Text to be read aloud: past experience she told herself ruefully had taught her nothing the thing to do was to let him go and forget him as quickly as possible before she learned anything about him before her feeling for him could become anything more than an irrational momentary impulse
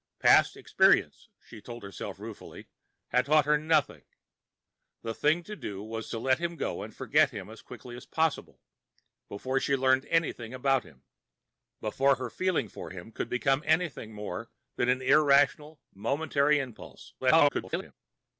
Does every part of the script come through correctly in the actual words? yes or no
no